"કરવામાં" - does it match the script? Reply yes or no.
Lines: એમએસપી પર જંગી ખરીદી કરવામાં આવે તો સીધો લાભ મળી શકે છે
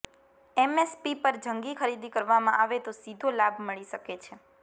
yes